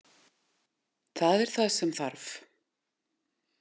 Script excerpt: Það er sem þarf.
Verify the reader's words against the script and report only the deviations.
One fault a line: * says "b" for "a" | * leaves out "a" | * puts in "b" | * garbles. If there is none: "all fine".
* puts in "það"